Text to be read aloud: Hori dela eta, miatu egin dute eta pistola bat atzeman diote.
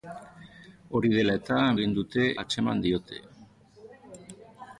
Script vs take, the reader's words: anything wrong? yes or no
yes